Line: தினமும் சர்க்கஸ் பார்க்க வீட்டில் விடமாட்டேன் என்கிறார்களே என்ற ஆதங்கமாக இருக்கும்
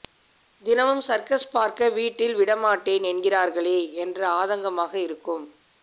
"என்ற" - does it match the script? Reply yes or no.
yes